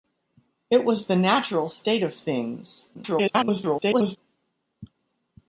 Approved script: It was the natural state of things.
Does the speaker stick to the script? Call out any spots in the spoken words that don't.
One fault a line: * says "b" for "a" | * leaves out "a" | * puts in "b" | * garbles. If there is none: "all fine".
* garbles